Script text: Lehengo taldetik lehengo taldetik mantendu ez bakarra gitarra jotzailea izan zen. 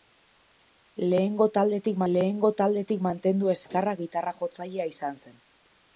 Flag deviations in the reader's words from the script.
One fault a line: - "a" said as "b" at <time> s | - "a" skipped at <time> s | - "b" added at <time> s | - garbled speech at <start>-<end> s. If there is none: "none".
none